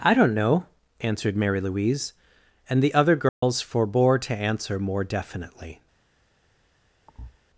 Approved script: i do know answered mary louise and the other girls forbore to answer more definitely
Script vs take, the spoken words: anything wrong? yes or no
yes